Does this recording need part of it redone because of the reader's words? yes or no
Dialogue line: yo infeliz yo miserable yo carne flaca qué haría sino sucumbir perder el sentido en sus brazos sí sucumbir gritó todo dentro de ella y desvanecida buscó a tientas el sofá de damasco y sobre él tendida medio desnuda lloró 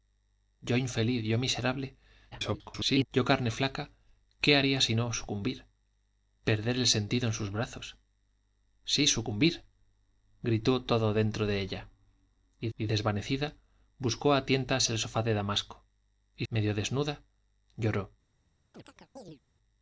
yes